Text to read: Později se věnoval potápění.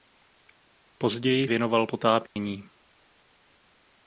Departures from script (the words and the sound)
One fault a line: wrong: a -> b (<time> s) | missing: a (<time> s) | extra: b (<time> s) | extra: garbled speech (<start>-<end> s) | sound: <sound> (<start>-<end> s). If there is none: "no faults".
missing: se (1.5 s)
sound: dropout (2.3-2.4 s)